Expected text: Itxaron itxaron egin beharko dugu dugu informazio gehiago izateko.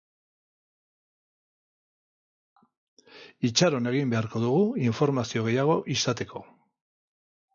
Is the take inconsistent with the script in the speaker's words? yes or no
yes